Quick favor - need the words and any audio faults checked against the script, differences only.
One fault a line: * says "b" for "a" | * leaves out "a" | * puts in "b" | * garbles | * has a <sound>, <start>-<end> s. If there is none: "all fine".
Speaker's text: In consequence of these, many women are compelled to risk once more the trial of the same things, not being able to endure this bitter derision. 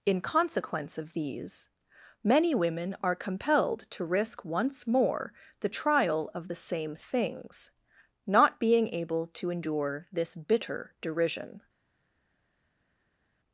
all fine